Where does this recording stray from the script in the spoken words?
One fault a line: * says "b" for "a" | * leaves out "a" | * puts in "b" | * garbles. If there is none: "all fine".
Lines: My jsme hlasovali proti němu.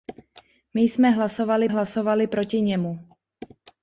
* puts in "hlasovali"